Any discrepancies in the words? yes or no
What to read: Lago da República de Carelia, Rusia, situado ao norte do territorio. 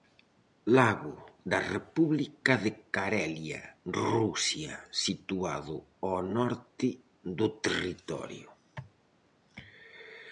no